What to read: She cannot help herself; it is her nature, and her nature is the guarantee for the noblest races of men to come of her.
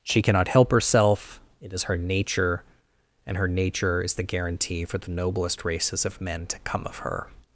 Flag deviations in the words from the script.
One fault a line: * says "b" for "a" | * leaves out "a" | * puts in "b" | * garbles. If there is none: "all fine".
all fine